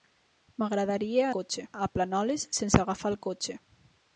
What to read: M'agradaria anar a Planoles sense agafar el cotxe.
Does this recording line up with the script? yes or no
no